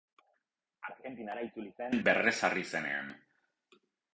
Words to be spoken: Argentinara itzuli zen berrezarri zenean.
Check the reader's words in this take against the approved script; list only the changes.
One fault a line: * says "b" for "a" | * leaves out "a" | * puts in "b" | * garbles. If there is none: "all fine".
all fine